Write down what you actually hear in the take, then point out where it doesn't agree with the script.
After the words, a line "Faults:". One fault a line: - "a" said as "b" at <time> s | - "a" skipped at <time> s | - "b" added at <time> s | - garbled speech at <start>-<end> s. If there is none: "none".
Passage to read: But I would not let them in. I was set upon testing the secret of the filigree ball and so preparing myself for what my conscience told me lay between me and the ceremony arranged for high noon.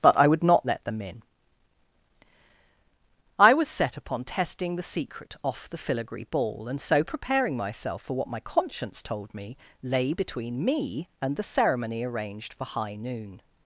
But I would not let them in. I was set upon testing the secret off the filigree ball and so preparing myself for what my conscience told me lay between me and the ceremony arranged for high noon.
Faults:
- "of" said as "off" at 5.4 s